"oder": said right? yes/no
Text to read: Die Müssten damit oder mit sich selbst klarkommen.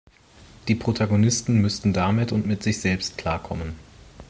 no